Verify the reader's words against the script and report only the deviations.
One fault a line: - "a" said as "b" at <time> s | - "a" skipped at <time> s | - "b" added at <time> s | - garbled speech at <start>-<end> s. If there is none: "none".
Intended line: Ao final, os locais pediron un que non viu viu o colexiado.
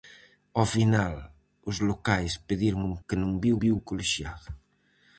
none